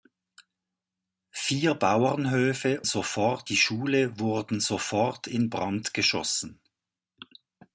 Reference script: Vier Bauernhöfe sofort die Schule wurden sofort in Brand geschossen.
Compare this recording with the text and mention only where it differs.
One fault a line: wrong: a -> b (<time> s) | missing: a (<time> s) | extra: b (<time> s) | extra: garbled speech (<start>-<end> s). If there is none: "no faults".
no faults